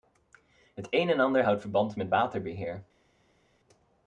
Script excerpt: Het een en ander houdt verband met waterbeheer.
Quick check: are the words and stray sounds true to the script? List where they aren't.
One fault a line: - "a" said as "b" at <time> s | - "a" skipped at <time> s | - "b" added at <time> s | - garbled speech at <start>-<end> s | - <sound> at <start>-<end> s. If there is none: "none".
none